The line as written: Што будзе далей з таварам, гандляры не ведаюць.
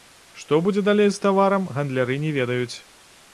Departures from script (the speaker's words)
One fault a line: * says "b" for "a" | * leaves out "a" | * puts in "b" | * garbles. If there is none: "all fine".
all fine